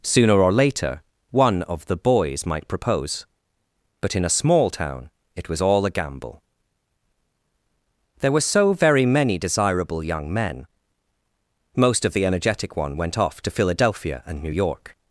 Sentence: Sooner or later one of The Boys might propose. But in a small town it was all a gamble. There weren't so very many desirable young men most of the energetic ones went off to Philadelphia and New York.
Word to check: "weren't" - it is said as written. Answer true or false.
false